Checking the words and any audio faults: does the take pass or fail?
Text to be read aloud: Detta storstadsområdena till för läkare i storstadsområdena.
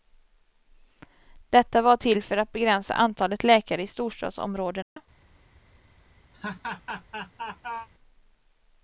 fail